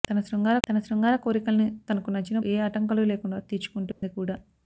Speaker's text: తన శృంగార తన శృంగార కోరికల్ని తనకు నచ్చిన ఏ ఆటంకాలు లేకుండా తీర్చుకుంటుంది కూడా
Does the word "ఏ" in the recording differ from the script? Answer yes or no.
no